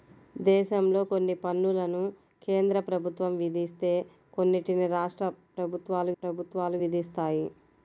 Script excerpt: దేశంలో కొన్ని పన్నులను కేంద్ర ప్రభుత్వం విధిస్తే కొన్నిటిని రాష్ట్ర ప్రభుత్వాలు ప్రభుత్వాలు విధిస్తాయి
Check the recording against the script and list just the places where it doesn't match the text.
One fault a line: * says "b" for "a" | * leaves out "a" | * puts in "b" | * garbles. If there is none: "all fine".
all fine